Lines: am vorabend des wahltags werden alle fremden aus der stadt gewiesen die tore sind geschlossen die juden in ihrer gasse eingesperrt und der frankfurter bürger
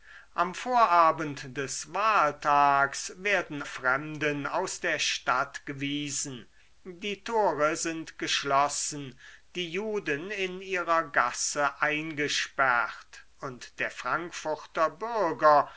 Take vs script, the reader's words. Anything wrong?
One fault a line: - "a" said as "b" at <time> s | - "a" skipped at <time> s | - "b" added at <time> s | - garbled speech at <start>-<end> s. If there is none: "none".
- "alle" skipped at 3.6 s